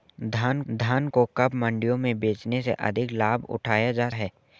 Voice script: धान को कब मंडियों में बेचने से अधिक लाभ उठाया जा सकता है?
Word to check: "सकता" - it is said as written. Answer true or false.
false